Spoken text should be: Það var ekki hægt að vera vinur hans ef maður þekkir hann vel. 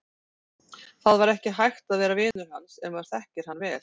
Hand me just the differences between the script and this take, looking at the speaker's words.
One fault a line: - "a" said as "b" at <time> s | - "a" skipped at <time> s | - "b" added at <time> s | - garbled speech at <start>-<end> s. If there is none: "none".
none